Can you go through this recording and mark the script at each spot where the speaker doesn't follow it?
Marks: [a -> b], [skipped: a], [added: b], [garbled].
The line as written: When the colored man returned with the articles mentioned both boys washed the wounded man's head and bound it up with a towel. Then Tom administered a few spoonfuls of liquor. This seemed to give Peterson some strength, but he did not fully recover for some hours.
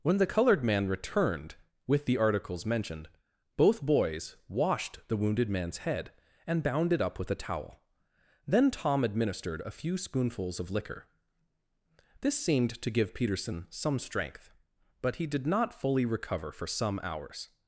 When the colored man returned with the articles mentioned both boys washed the wounded man's head and bound it up with a towel. Then Tom administered a few spoonfuls of liquor. This seemed to give Peterson some strength, but he did not fully recover for some hours.